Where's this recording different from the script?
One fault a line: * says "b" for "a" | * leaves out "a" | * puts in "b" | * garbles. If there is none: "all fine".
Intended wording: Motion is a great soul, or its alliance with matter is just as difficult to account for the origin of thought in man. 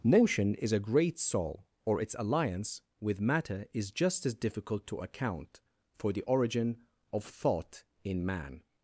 all fine